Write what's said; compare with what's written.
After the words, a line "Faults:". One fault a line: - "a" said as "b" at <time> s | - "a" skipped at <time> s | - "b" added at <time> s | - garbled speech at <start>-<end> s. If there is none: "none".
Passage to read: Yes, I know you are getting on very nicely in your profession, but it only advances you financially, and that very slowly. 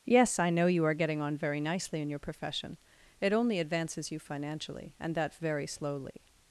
Yes, I know you are getting on very nicely in your profession, it only advances you financially, and that very slowly.
Faults:
- "but" skipped at 2.8 s